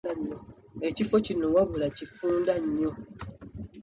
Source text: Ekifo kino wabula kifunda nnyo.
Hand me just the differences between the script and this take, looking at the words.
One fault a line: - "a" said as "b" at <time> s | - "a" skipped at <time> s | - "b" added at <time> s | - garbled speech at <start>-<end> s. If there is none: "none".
none